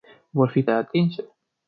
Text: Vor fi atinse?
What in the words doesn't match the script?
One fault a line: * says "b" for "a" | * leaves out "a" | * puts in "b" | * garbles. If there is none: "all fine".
all fine